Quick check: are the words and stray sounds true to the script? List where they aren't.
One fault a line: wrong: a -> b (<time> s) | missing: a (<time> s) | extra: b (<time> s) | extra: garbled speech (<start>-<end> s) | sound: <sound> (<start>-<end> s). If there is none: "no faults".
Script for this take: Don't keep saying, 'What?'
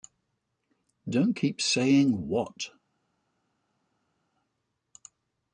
no faults